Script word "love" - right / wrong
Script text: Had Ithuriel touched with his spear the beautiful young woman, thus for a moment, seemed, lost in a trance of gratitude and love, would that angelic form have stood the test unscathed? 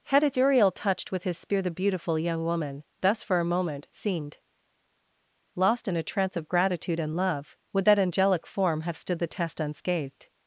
right